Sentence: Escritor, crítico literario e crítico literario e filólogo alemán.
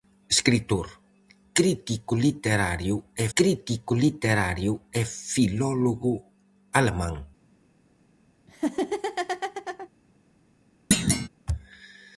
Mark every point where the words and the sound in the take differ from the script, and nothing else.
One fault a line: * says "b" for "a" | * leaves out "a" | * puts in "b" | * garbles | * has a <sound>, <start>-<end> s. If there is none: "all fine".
* has a laugh, 8.5-9.9 s
* has a thud, 10.9-11.3 s